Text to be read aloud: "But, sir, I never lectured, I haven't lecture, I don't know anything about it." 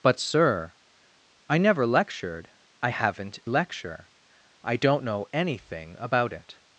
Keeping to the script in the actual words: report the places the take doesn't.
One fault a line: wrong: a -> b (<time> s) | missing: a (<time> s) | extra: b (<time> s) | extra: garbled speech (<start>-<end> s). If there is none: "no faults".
no faults